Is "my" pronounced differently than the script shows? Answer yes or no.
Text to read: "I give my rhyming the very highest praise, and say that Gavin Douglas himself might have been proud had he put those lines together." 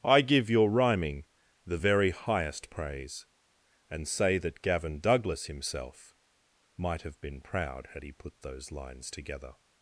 yes